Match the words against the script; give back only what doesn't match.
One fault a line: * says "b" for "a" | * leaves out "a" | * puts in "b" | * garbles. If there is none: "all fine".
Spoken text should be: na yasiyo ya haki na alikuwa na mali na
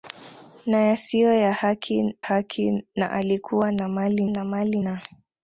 * puts in "haki"
* puts in "mali na"